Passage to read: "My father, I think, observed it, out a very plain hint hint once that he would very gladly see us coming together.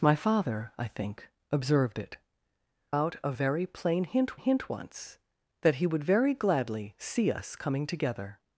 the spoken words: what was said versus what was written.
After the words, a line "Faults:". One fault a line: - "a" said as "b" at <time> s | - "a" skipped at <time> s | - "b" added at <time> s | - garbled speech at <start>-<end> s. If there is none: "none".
"My father, I think, observed it, out a very plain hint hint once that he would very gladly see us coming together.
Faults:
none